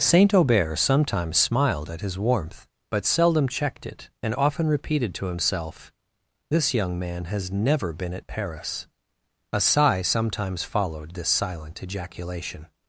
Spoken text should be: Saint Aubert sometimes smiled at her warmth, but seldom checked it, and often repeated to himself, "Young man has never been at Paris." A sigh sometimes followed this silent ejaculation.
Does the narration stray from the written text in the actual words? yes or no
yes